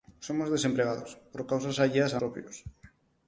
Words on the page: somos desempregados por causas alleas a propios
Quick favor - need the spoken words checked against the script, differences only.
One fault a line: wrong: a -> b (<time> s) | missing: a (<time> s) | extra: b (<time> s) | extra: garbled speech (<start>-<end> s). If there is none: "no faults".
no faults